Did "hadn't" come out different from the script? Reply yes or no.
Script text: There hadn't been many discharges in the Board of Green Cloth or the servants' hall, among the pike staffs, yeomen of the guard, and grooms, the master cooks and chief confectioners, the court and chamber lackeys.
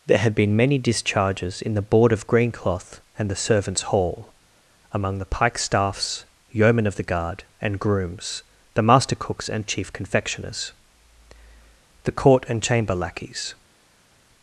yes